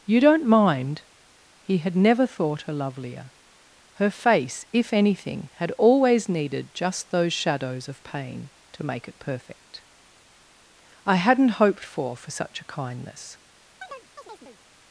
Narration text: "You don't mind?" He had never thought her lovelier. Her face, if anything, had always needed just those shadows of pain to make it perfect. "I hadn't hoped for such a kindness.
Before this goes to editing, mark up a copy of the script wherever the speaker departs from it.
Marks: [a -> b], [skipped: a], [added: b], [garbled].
"You don't mind?" He had never thought her lovelier. Her face, if anything, had always needed just those shadows of pain to make it perfect. "I hadn't hoped for [added: for] such a kindness.